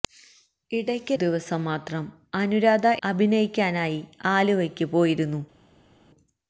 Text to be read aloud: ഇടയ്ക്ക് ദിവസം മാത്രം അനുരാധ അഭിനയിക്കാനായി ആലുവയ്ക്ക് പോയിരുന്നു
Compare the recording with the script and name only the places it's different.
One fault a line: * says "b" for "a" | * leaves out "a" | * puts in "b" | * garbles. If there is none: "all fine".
all fine